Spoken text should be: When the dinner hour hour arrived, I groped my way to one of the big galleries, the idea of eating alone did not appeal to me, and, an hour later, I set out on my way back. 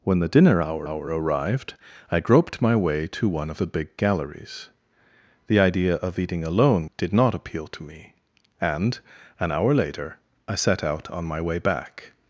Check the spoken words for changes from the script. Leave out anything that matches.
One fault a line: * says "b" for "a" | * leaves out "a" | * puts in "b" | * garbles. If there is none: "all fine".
all fine